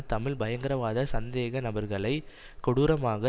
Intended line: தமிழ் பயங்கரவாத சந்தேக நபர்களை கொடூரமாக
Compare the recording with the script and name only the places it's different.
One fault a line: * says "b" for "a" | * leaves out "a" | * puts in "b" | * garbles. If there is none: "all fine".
all fine